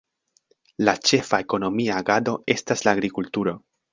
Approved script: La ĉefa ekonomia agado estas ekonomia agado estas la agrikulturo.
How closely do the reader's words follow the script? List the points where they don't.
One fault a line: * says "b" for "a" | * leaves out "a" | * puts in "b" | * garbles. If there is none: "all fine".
* leaves out "ekonomia agado estas"